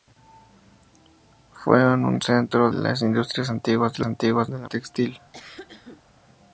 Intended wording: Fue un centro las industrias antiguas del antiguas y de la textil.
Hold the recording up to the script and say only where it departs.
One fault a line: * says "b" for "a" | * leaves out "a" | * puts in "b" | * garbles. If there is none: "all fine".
all fine